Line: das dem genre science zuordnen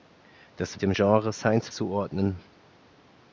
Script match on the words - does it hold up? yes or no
yes